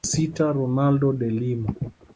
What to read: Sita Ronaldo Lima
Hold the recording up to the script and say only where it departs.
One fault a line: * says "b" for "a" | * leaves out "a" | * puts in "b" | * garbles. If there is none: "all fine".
* puts in "de"